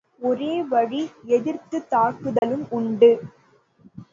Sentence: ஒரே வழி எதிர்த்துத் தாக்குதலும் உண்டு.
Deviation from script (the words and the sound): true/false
true